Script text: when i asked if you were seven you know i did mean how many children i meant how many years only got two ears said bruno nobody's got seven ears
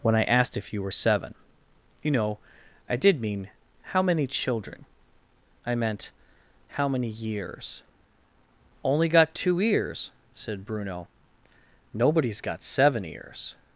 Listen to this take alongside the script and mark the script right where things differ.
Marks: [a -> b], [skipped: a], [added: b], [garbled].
when i asked if you were seven you know i did mean how many children i meant how many years only got two ears said bruno nobody's got seven ears